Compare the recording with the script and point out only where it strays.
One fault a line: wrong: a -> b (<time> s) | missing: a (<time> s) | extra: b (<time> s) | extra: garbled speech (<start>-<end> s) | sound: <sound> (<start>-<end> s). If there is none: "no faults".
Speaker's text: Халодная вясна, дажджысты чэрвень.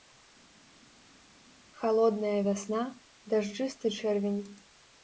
no faults